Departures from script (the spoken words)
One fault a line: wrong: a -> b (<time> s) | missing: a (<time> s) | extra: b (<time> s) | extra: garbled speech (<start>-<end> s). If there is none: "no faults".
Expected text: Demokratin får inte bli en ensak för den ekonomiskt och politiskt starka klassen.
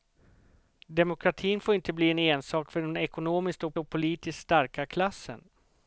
extra: och (3.8 s)